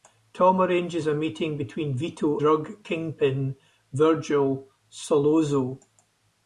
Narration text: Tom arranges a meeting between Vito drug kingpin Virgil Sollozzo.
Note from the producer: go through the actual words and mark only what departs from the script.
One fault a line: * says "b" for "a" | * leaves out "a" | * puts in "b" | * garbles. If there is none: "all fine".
all fine